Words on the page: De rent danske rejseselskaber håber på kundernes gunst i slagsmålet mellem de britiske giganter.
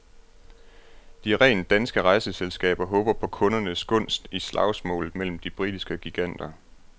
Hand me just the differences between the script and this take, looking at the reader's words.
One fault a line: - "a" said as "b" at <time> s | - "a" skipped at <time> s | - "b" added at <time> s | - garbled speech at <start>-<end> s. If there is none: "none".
none